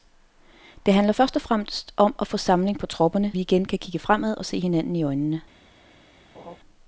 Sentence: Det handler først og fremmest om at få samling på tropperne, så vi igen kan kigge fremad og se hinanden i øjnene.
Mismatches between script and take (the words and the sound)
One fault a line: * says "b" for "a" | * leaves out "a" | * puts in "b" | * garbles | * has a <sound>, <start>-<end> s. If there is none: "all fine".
* leaves out "så"
* has a laugh, 6.3-6.6 s